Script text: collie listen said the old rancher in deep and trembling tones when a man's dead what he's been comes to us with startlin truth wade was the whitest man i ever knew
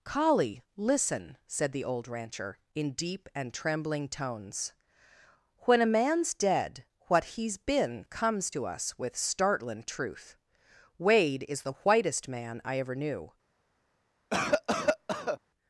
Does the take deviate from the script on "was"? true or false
true